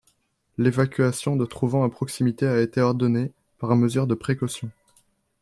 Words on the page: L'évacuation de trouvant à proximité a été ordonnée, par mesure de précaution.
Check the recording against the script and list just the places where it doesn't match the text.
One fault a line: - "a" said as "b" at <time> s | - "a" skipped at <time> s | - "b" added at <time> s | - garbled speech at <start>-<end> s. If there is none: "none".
none